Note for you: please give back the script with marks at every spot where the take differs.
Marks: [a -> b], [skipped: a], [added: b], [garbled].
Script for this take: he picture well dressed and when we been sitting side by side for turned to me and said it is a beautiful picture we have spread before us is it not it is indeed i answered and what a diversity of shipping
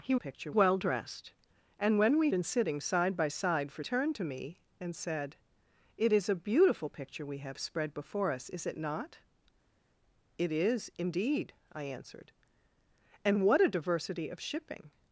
he picture well dressed and when we been sitting side by side for turned to me and said it is a beautiful picture we have spread before us is it not it is indeed i answered and what a diversity of shipping